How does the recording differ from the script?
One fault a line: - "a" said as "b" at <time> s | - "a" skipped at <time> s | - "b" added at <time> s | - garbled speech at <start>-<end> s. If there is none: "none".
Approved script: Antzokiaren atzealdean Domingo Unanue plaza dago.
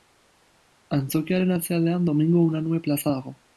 none